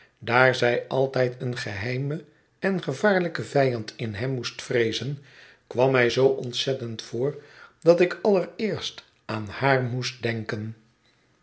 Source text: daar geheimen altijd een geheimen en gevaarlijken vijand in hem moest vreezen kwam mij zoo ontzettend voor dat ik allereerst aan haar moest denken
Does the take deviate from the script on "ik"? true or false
false